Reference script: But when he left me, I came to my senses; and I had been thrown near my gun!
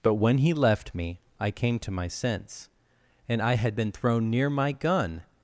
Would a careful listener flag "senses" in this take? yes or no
yes